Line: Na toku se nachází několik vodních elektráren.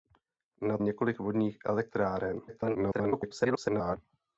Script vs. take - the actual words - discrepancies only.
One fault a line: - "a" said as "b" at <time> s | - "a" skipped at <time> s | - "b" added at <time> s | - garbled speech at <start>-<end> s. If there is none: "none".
- "toku se nachází" skipped at 0.8 s
- garbled speech at 2.5-4.0 s